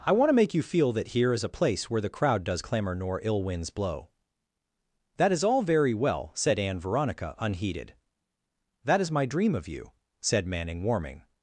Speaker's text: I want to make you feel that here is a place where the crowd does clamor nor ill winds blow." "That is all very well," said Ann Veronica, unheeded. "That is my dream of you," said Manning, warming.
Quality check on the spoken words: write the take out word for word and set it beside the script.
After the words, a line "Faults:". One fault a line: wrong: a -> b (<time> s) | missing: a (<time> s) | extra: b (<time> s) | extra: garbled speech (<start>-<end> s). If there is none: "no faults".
I want to make you feel that here is a place where the crowd does clamor nor ill winds blow." "That is all very well," said Ann Veronica, unheeded. "That is my dream of you," said Manning, warming.
Faults:
no faults